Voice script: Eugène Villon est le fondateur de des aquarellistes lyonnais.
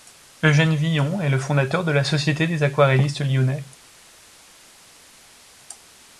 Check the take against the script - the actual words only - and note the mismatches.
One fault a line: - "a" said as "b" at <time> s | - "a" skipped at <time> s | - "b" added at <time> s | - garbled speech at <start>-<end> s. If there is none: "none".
- "la Société" added at 1.9 s